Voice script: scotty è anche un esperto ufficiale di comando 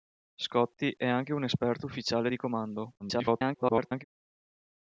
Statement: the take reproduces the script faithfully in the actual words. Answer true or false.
false